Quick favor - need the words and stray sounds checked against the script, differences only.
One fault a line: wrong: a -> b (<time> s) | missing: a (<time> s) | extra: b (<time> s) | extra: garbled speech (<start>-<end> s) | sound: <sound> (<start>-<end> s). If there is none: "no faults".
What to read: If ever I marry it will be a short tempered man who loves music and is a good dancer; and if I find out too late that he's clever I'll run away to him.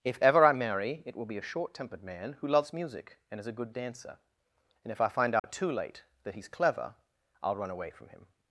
sound: dropout (5.4-5.4 s)
wrong: to -> from (7.9 s)